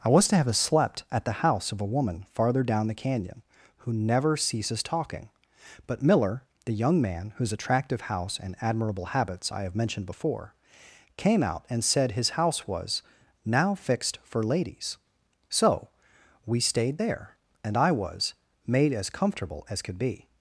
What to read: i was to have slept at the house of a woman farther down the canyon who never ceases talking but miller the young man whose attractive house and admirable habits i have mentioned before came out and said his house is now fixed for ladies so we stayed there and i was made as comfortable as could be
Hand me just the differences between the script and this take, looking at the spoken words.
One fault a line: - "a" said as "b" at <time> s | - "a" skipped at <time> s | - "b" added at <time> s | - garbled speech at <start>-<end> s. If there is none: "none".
- "is" said as "was" at 12.7 s